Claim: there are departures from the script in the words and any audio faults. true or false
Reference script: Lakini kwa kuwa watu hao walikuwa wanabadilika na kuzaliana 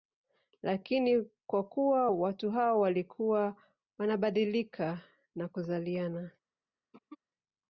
true